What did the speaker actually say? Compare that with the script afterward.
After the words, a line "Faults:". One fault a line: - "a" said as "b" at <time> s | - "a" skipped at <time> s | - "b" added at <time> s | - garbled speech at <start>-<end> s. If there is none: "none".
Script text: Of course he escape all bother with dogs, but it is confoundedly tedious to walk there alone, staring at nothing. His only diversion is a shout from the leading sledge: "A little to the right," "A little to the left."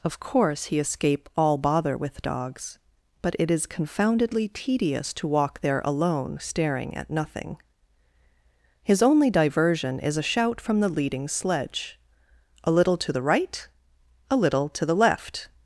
Of course he escape all bother with dogs, but it is confoundedly tedious to walk there alone, staring at nothing. His only diversion is a shout from the leading sledge: "A little to the right," "A little to the left."
Faults:
none